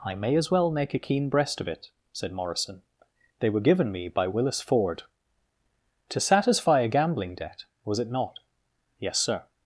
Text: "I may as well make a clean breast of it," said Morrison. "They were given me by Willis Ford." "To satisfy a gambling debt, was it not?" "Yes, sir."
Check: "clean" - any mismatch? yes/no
yes